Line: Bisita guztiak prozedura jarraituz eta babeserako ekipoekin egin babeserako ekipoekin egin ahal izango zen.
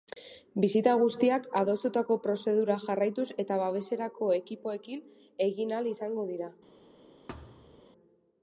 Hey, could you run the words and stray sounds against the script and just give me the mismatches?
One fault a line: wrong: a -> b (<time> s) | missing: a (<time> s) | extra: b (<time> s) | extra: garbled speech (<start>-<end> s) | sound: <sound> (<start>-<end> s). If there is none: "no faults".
extra: adostutako (1.6 s)
missing: babeserako ekipoekin egin (5.8 s)
wrong: zen -> dira (6.3 s)
sound: thud (7.3-7.8 s)